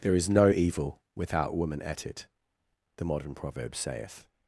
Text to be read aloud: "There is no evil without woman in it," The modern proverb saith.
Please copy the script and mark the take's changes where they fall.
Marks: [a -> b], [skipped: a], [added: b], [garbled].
"There is no evil without woman [in -> at] it," The modern proverb saith.